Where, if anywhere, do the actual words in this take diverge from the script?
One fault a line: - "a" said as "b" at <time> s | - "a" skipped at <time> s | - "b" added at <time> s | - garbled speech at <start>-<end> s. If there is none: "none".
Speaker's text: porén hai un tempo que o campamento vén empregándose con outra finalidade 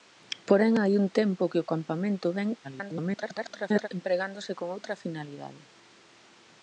- garbled speech at 2.6-3.9 s